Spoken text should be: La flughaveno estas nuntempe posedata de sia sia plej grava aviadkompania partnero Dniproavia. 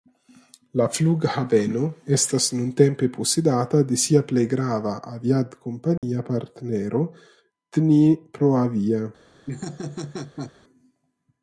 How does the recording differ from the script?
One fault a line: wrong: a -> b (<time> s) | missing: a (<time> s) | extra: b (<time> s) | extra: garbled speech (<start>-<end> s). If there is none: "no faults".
missing: sia (4.2 s)